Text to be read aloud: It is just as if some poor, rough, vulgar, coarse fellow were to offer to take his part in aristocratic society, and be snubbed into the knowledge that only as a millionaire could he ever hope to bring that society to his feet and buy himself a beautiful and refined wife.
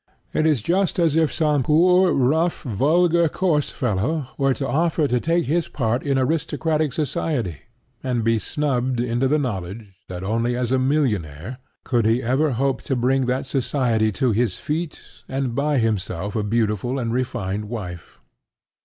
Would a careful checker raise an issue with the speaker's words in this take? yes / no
no